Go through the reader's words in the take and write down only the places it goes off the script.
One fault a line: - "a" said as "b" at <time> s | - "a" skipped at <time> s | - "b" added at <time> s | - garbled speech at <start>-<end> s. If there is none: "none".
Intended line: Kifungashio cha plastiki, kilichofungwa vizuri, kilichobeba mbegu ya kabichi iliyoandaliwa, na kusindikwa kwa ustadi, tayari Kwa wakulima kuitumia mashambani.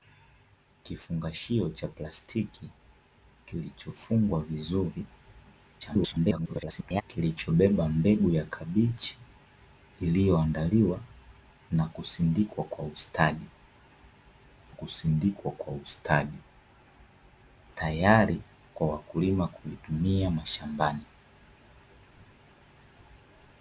- garbled speech at 5.8-7.0 s
- "kusindikwa kwa ustadi" added at 14.7 s